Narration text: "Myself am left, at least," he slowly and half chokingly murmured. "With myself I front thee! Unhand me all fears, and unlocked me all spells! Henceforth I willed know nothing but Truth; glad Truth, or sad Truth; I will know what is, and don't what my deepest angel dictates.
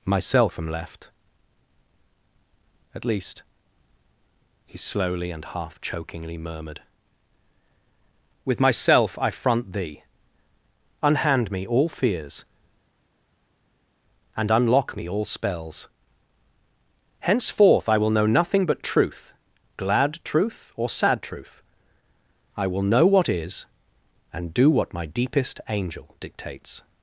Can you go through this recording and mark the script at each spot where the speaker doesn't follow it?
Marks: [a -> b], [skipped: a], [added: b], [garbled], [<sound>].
"Myself am left, at least," he slowly and half chokingly murmured. "With myself I front thee! Unhand me all fears, and [unlocked -> unlock] me all spells! Henceforth I [willed -> will] know nothing but Truth; glad Truth, or sad Truth; I will know what is, and [don't -> do] what my deepest angel dictates.